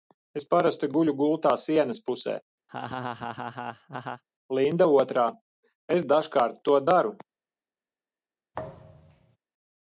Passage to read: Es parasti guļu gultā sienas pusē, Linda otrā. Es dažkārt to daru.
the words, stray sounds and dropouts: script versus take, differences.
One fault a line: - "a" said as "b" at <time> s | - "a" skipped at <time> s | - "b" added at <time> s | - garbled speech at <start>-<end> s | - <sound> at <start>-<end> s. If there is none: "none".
- laugh at 2.7-4.2 s
- thud at 8.5-9.4 s